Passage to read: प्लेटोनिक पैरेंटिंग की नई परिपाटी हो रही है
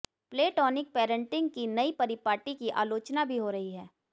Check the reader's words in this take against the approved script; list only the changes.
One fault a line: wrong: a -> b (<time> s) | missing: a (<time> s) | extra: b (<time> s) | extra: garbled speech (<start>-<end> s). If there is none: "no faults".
extra: की आलोचना भी (2.5 s)